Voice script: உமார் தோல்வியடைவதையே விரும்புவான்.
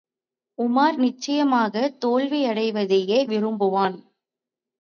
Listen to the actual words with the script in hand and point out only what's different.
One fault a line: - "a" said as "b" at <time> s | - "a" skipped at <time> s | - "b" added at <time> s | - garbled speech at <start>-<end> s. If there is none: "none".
- "நிச்சயமாகத்" added at 1.0 s